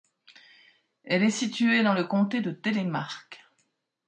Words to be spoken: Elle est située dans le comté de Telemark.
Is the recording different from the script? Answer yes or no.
no